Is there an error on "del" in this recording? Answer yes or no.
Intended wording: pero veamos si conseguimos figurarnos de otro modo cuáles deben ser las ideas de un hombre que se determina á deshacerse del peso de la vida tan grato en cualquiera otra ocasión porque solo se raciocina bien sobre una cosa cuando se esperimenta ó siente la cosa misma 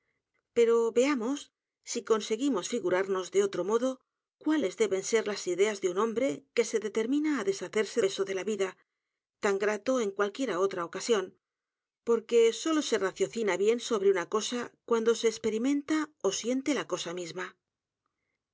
yes